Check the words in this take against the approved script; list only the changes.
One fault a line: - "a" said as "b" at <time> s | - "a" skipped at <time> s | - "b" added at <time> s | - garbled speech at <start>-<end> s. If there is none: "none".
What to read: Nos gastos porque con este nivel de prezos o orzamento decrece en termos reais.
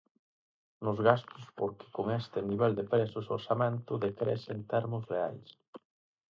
none